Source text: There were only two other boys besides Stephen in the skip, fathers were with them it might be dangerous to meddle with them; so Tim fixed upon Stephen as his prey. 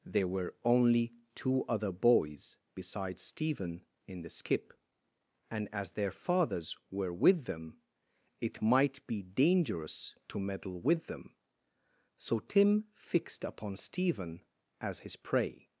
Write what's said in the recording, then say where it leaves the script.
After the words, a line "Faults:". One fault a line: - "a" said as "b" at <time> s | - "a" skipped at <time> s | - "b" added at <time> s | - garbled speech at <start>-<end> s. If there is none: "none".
There were only two other boys besides Stephen in the skip, and as their fathers were with them it might be dangerous to meddle with them; so Tim fixed upon Stephen as his prey.
Faults:
- "and as their" added at 5.5 s